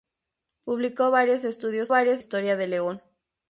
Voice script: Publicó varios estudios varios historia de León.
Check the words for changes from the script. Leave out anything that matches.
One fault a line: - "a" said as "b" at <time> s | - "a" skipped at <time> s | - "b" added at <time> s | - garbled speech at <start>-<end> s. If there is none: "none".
none